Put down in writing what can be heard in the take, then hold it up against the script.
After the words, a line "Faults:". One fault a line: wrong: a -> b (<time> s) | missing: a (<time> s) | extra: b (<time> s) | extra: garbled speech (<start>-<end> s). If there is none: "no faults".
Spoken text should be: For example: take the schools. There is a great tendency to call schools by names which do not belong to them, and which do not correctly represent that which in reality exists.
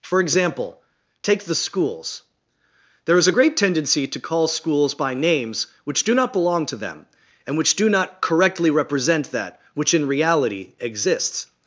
For example: take the schools. There is a great tendency to call schools by names which do not belong to them, and which do not correctly represent that which in reality exists.
Faults:
no faults